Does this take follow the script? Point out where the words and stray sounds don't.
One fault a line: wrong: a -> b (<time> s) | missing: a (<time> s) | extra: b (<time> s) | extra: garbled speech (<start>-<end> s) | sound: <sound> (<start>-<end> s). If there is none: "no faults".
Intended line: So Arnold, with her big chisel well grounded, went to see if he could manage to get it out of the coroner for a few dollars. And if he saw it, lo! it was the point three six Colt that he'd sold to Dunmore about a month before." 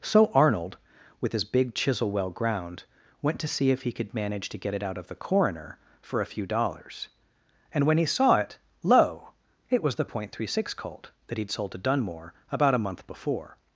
wrong: her -> his (1.3 s)
wrong: grounded -> ground (2.3 s)
wrong: if -> when (7.8 s)